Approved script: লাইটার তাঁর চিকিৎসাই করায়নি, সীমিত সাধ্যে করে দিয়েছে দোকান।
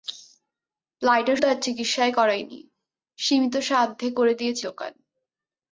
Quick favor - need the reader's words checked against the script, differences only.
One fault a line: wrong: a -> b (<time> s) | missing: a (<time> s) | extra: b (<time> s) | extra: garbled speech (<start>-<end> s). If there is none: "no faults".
no faults